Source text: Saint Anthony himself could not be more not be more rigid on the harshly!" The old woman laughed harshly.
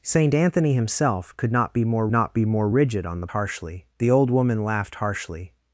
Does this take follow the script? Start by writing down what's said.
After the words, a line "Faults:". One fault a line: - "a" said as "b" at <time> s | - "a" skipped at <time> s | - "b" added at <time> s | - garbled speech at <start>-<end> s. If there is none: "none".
Saint Anthony himself could not be more not be more rigid on the harshly!" The old woman laughed harshly.
Faults:
none